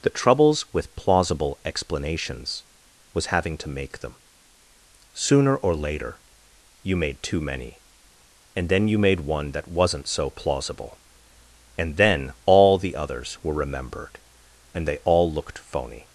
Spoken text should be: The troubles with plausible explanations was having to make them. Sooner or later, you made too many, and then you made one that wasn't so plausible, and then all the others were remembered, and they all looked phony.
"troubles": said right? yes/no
yes